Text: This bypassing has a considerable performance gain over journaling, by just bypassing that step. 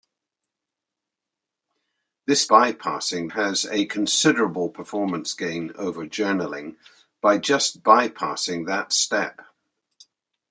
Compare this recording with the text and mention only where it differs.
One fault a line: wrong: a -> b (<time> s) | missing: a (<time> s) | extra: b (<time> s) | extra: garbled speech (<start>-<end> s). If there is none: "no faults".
no faults